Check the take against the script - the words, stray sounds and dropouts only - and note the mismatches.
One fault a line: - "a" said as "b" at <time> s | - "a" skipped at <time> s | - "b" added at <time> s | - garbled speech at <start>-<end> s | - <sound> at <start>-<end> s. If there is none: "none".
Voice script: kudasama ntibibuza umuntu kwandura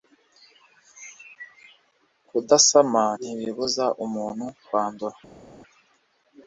none